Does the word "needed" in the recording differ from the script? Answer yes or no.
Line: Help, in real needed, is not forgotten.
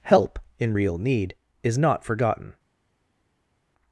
yes